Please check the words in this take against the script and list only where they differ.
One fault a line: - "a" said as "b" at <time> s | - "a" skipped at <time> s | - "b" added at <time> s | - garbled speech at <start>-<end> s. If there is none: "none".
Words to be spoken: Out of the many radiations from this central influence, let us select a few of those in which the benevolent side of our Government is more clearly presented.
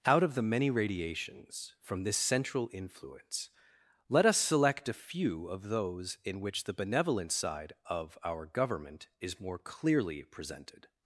none